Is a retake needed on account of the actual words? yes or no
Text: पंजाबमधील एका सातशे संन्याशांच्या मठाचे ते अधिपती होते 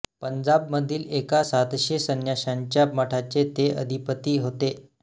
no